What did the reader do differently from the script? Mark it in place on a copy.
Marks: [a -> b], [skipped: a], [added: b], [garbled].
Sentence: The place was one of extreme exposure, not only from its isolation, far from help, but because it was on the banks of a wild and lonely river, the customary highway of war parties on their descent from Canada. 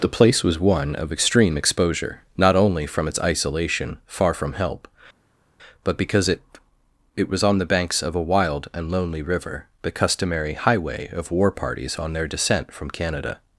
The place was one of extreme exposure, not only from its isolation, far from help, but because it [added: it] was on the banks of a wild and lonely river, the customary highway of war parties on their descent from Canada.